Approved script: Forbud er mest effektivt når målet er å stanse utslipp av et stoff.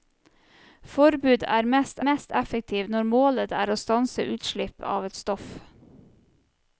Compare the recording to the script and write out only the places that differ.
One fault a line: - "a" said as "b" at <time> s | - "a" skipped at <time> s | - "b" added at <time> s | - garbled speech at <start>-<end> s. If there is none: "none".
- "mest" added at 2.1 s